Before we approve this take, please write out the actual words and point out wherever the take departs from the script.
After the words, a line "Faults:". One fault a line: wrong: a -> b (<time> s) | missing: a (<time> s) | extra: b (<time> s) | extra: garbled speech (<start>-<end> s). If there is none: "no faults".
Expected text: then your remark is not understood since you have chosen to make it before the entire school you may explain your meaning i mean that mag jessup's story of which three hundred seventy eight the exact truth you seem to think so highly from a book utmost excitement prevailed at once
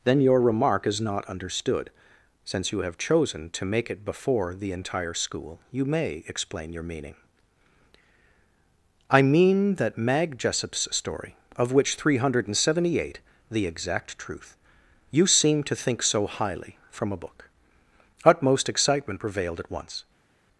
then your remark is not understood since you have chosen to make it before the entire school you may explain your meaning i mean that mag jessup's story of which three hundred seventy eight the exact truth you seem to think so highly from a book utmost excitement prevailed at once
Faults:
no faults